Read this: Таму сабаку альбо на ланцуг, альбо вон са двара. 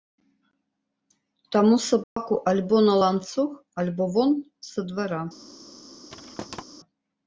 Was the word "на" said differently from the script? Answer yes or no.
no